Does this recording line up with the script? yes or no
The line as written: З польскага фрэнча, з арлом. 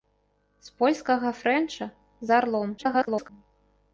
no